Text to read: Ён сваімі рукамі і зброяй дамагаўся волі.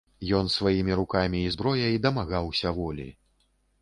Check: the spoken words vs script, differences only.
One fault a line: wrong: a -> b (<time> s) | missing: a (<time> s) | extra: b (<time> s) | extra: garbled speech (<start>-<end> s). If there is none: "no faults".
no faults